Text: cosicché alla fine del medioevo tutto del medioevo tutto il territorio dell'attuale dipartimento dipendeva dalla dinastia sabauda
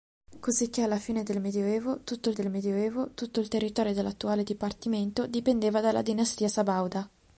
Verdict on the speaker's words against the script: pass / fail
pass